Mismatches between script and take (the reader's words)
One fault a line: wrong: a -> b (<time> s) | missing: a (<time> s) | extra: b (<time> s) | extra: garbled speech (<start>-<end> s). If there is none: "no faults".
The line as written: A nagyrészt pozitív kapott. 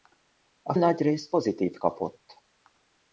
no faults